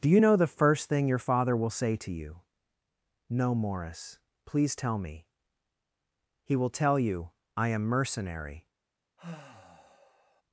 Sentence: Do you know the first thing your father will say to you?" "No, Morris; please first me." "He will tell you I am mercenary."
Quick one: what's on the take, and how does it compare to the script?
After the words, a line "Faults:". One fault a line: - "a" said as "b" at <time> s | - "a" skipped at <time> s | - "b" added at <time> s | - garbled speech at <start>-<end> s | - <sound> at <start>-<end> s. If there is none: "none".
Do you know the first thing your father will say to you?" "No, Morris; please tell me." "He will tell you I am mercenary."
Faults:
- "first" said as "tell" at 4.7 s
- sigh at 9.2-10.4 s